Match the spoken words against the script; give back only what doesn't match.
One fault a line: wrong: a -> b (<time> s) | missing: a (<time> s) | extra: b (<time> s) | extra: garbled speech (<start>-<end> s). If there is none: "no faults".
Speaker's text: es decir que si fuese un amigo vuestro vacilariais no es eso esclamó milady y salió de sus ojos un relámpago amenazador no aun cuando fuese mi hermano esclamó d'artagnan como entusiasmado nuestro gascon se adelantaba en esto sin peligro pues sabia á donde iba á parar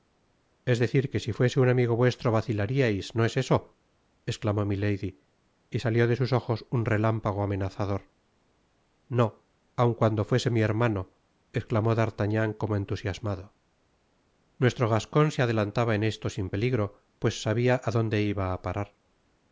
no faults